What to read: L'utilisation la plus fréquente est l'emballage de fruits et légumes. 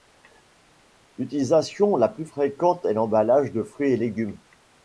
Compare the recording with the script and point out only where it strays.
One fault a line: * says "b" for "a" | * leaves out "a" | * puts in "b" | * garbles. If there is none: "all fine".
all fine